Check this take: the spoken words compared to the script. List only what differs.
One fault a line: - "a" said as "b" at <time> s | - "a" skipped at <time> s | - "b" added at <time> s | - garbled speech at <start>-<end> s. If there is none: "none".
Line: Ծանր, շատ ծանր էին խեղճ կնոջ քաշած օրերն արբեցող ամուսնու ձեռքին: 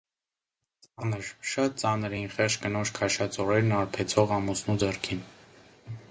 none